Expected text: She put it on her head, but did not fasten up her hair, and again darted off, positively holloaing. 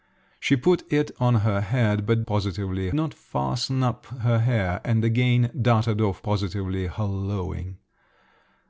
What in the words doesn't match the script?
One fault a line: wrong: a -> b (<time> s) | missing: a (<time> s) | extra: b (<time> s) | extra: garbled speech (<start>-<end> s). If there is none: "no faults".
wrong: did -> positively (2.3 s)